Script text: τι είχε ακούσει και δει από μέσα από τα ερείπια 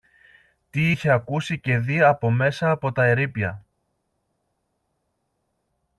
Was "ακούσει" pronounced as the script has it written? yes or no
yes